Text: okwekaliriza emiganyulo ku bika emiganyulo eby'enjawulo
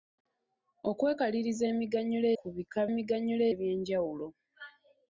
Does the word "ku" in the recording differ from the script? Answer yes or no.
no